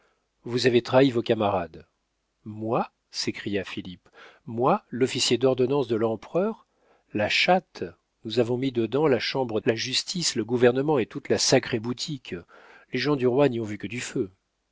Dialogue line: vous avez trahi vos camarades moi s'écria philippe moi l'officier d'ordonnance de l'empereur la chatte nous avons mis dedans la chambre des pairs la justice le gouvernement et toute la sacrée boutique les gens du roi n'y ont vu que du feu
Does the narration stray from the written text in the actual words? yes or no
yes